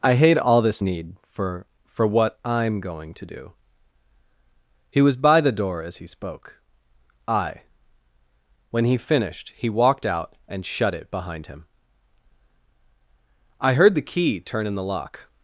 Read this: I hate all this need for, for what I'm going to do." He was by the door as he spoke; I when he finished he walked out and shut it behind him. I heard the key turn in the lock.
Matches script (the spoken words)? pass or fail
pass